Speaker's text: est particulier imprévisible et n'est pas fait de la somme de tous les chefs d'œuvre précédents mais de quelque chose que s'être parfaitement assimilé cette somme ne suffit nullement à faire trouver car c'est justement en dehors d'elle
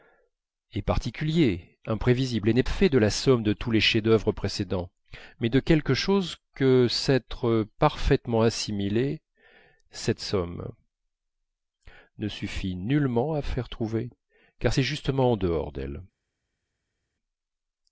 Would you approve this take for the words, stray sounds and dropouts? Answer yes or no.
no